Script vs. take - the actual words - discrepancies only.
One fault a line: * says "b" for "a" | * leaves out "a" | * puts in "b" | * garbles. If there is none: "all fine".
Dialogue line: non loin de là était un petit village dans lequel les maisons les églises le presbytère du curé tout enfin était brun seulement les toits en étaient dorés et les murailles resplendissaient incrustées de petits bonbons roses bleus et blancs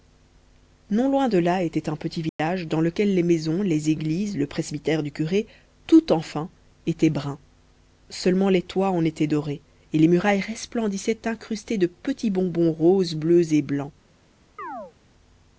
all fine